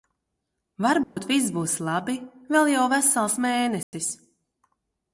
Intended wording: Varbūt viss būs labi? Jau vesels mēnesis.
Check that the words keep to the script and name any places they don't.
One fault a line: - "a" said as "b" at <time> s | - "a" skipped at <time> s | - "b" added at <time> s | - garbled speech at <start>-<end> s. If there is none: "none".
- "Vēl" added at 2.5 s